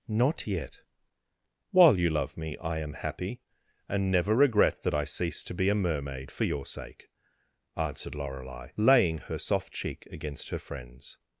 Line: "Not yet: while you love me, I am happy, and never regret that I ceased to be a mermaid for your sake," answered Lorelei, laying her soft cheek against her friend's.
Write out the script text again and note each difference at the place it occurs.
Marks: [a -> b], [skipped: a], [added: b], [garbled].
"Not yet: while you love me, I am happy, and never regret that I ceased to be a mermaid for your sake," answered Lorelei, laying her soft cheek against her friend's.